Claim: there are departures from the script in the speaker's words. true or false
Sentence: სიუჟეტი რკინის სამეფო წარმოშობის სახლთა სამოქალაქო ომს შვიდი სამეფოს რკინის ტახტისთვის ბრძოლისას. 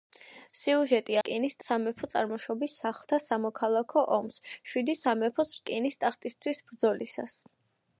false